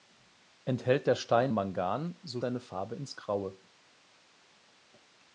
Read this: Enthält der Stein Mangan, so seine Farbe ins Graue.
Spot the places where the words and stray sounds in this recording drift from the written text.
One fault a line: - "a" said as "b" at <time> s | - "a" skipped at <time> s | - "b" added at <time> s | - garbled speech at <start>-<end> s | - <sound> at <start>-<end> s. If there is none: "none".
none